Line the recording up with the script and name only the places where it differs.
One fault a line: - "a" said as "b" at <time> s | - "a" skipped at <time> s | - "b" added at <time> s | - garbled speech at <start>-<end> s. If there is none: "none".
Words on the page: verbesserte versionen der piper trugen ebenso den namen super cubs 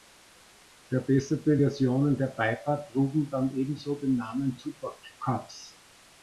- "dann" added at 3.3 s